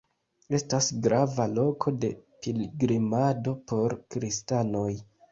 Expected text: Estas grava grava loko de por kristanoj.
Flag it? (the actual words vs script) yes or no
yes